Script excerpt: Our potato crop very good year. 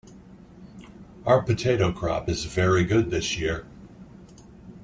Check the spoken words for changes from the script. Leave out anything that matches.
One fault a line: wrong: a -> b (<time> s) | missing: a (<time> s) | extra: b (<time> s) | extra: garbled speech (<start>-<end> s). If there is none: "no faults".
extra: is (2.3 s)
extra: this (3.1 s)